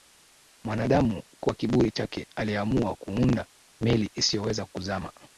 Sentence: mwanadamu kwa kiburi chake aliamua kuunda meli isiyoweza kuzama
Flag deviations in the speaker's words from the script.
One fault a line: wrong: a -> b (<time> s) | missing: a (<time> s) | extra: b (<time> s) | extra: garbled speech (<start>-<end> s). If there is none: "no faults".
no faults